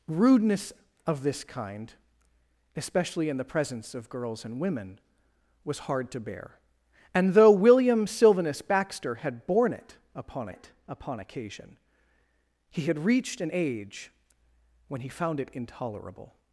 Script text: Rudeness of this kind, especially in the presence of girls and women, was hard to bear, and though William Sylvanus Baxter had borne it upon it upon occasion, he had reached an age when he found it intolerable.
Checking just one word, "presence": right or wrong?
right